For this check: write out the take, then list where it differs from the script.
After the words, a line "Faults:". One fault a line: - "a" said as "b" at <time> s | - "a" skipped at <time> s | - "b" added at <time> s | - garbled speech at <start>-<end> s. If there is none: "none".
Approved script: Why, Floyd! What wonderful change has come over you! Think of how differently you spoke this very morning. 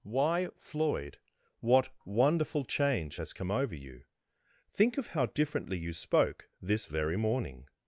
Why, Floyd! What wonderful change has come over you! Think of how differently you spoke this very morning.
Faults:
none